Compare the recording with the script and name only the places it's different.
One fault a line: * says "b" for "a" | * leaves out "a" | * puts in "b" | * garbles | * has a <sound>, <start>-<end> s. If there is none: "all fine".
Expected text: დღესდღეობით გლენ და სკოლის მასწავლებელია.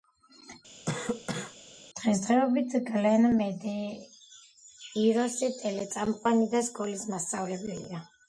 * has a cough, 0.8-1.6 s
* puts in "მედეიროსი ტელეწამყვანი"